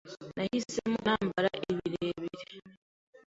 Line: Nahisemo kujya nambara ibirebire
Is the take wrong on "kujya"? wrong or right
wrong